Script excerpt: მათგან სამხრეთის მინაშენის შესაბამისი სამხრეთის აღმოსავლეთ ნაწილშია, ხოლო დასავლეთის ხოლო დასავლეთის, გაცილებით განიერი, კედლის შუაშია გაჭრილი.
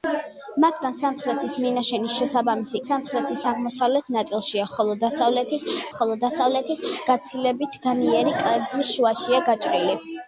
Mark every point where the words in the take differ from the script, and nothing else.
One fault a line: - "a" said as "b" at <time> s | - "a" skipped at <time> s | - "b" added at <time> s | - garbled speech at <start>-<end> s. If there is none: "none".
none